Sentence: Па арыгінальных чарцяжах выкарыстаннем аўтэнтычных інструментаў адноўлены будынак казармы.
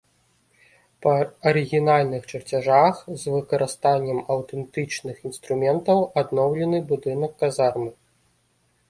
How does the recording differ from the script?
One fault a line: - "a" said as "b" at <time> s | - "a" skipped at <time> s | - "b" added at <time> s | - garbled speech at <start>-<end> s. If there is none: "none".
- "з" added at 3.2 s